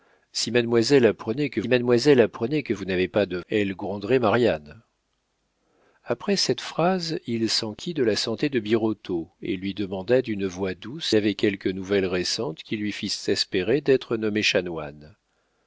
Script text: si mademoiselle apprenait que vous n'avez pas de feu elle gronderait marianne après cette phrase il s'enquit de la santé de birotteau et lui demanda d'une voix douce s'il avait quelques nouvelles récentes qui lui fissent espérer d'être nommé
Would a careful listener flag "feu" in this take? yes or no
yes